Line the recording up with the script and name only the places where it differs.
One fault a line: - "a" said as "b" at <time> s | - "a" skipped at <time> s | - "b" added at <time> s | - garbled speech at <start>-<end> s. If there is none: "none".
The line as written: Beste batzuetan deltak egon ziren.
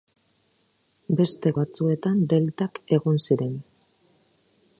none